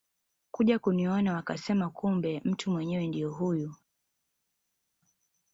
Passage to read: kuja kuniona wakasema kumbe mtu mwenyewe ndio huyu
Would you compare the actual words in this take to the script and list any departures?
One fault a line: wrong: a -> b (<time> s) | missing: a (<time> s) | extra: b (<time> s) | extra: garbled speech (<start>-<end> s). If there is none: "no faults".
no faults